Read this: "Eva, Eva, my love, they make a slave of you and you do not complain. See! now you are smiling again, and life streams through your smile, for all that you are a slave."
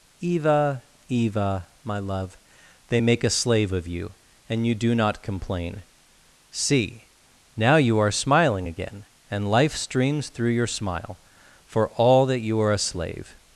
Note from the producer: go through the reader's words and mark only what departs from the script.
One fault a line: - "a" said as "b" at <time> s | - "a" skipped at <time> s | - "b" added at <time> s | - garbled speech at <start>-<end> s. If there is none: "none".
none